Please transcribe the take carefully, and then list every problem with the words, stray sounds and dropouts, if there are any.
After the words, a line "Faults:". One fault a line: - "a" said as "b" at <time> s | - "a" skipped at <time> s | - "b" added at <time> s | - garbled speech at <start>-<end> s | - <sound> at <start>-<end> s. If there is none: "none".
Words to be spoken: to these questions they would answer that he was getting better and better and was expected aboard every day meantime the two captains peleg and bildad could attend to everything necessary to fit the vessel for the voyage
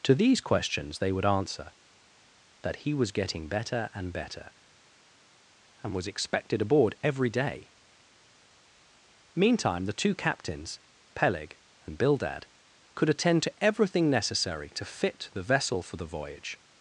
to these questions they would answer that he was getting better and better and was expected aboard every day meantime the two captains peleg and bildad could attend to everything necessary to fit the vessel for the voyage
Faults:
none